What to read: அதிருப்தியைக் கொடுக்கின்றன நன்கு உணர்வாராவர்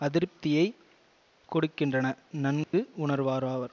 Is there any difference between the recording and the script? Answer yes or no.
no